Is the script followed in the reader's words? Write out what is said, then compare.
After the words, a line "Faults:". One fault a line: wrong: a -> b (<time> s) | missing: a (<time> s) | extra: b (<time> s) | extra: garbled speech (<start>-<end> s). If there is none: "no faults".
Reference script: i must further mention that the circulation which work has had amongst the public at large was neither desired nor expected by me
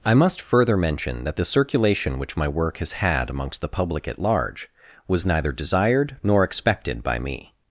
i must further mention that the circulation which my work has had amongst the public at large was neither desired nor expected by me
Faults:
extra: my (2.4 s)